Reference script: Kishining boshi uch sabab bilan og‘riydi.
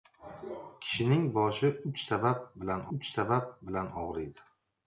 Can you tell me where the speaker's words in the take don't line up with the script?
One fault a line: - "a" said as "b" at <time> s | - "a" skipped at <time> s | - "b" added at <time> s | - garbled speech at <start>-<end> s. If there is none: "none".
- "uch sabab bilan" added at 3.0 s